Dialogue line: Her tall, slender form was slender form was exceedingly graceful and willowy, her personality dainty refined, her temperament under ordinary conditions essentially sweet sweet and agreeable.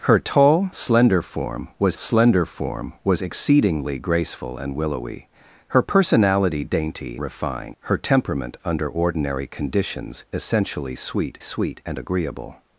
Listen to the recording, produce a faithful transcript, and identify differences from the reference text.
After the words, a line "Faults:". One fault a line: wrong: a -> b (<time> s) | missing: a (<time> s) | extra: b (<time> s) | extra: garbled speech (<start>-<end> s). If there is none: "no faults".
Her tall, slender form was slender form was exceedingly graceful and willowy, her personality dainty refined, her temperament under ordinary conditions essentially sweet sweet and agreeable.
Faults:
no faults